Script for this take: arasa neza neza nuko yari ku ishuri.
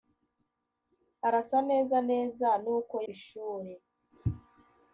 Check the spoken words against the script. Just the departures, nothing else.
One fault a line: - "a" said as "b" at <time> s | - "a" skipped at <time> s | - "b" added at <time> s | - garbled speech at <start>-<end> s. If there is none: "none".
- "yari ku" skipped at 3.0 s